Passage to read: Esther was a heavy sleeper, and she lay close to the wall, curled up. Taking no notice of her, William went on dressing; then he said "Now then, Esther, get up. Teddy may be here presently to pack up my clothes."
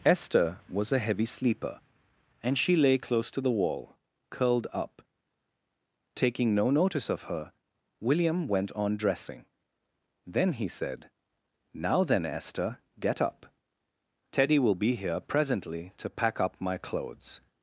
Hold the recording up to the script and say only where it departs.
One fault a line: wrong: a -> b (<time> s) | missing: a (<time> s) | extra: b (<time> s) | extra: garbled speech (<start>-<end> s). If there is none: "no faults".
wrong: may -> will (14.6 s)